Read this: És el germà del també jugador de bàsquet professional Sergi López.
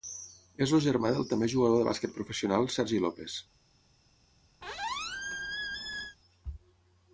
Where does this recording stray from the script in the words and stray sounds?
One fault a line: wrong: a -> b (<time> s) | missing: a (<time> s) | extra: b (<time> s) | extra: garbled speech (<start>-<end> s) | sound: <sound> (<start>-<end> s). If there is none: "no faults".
sound: squeak (4.6-6.2 s)